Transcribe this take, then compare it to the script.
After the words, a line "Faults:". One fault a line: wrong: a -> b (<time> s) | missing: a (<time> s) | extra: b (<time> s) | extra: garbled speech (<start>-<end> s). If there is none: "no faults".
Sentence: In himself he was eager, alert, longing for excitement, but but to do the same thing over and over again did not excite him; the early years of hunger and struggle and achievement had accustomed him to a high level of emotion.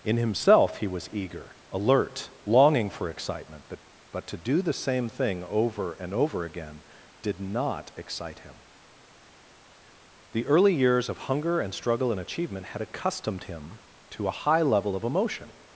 In himself he was eager, alert, longing for excitement, but but to do the same thing over and over again did not excite him; the early years of hunger and struggle and achievement had accustomed him to a high level of emotion.
Faults:
no faults